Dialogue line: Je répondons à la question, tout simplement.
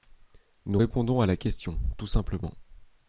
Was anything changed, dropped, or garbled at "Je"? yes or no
yes